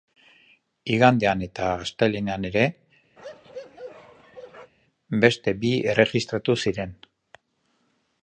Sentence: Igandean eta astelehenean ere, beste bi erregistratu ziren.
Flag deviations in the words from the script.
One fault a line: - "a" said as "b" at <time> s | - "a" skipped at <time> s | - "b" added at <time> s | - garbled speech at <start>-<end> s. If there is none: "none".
none